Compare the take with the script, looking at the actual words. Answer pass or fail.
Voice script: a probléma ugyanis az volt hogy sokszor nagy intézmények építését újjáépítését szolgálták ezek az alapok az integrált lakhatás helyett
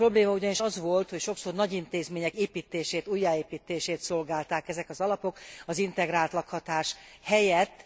pass